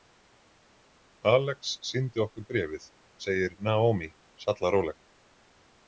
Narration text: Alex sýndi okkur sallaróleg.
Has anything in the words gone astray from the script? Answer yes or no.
yes